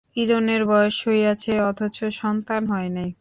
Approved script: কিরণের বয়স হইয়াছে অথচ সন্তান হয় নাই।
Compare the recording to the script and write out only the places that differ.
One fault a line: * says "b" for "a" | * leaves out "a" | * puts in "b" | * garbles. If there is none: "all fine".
all fine